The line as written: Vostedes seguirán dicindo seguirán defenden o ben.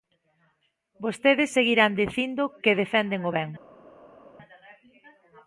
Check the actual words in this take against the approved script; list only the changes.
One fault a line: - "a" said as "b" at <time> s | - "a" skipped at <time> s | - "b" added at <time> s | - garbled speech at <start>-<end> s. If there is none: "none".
- "seguirán" said as "que" at 2.6 s